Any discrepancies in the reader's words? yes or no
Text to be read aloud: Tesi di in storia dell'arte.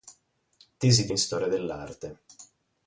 no